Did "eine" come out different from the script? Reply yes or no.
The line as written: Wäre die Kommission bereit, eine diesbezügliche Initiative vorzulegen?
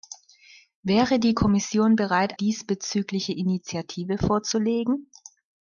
yes